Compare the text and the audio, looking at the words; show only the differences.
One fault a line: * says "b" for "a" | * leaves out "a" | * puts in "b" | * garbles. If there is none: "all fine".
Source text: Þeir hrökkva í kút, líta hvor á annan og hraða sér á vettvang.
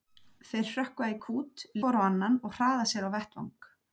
* leaves out "líta"